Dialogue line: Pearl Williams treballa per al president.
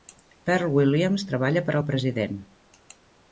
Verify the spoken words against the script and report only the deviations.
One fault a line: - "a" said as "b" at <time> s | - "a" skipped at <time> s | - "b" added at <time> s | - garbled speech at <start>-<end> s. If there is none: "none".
none